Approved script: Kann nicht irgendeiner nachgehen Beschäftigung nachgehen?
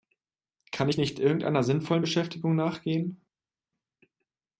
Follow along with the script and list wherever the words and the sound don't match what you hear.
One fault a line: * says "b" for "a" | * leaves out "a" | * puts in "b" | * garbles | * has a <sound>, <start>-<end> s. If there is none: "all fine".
* puts in "ich"
* says "sinnvollen" for "nachgehen"